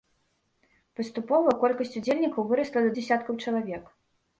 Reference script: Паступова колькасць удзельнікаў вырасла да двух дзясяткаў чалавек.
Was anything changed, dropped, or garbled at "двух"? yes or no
yes